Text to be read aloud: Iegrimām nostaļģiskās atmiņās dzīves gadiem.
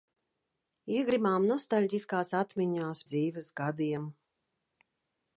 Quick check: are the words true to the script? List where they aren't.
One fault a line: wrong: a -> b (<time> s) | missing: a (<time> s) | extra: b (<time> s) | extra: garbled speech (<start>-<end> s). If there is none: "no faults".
no faults